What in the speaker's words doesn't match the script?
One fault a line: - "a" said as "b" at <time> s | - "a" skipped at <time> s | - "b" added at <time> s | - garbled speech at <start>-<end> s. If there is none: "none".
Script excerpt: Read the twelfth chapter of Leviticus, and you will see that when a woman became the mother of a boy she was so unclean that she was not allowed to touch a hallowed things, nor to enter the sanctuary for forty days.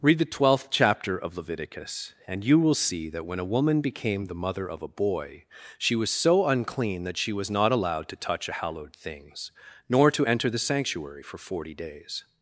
none